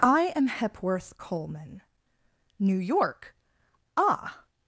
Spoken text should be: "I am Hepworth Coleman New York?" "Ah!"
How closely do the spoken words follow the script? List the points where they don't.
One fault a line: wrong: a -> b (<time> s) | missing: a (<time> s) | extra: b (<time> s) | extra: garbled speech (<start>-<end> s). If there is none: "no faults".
no faults